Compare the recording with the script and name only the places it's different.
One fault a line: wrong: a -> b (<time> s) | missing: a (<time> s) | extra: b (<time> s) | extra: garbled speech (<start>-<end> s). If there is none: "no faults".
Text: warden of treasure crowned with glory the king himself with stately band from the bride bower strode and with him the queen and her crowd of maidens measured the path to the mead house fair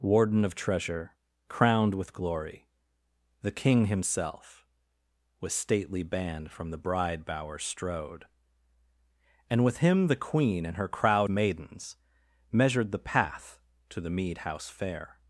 missing: of (11.3 s)